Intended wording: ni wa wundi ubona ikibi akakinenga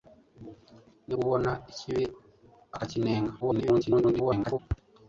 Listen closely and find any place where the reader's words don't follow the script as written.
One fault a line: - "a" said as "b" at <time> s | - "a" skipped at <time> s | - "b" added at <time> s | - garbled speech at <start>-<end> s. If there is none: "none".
- "wa wundi" skipped at 1.1 s
- garbled speech at 3.4-4.6 s